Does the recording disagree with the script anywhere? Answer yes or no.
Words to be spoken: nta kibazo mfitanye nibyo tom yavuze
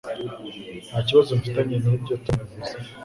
no